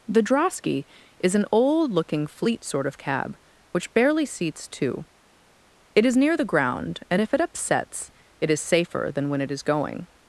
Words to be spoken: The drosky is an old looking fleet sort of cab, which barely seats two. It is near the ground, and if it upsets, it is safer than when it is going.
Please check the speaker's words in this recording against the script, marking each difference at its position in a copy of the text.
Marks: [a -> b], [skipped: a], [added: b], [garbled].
The drosky is an old looking fleet sort of cab, which barely seats two. It is near the ground, and if it upsets, it is safer than when it is going.